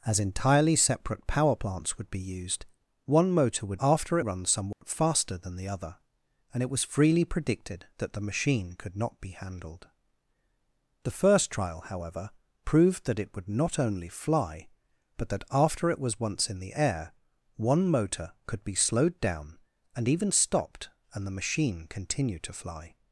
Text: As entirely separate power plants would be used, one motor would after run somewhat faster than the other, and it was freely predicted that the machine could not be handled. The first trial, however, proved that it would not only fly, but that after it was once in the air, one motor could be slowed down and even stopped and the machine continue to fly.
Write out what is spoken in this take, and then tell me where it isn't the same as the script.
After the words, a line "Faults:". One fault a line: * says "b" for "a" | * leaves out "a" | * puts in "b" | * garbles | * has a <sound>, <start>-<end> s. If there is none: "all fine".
As entirely separate power plants would be used, one motor would after run somewhat faster than the other, and it was freely predicted that the machine could not be handled. The first trial, however, proved that it would not only fly, but that after it was once in the air, one motor could be slowed down and even stopped and the machine continue to fly.
Faults:
* has a dropout, 4.7-4.8 s